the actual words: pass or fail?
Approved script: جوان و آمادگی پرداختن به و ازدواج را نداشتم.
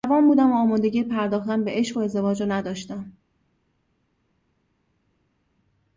fail